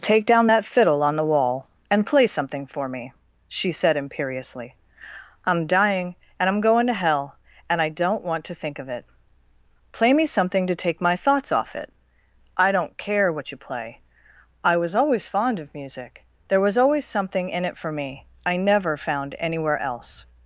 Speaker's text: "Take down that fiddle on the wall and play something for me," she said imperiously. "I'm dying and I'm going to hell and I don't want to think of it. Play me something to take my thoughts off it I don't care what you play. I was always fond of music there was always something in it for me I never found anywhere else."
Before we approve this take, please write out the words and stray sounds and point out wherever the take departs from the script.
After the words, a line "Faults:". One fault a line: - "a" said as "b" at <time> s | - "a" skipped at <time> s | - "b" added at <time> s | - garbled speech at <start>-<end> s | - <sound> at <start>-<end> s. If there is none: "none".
"Take down that fiddle on the wall and play something for me," she said imperiously. "I'm dying and I'm going to hell and I don't want to think of it. Play me something to take my thoughts off it I don't care what you play. I was always fond of music there was always something in it for me I never found anywhere else."
Faults:
none